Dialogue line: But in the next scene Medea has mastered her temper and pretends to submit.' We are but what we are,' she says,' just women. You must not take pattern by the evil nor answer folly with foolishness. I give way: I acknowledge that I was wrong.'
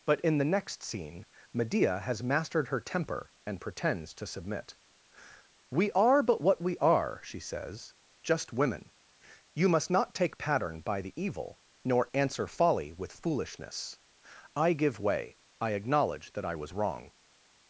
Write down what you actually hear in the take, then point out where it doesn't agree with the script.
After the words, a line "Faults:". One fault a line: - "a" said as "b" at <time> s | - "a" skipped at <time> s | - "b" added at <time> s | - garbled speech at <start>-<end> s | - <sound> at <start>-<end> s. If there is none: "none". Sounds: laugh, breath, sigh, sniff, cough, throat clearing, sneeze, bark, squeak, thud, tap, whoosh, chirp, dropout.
But in the next scene Medea has mastered her temper and pretends to submit.' We are but what we are,' she says,' just women. You must not take pattern by the evil nor answer folly with foolishness. I give way: I acknowledge that I was wrong.'
Faults:
none